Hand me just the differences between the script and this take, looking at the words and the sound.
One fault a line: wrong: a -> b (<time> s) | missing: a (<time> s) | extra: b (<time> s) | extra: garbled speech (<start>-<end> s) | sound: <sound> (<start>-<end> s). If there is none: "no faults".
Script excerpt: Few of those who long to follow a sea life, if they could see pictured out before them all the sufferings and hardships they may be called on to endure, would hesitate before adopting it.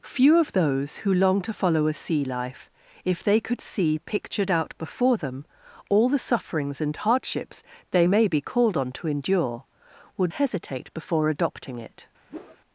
sound: whoosh (12.3-12.6 s)